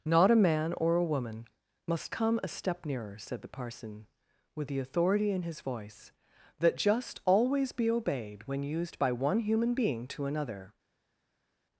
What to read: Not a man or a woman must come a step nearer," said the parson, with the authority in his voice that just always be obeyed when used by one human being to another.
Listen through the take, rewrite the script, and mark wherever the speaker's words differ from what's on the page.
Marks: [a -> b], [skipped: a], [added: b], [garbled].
Not a man or a woman must come a step nearer," said the parson, with the authority in his voice that just always be obeyed when used by one human being to another.